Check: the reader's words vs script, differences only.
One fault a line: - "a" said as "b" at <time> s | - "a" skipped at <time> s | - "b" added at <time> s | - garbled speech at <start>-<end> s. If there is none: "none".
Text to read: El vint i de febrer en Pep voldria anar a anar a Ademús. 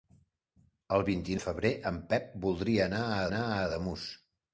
none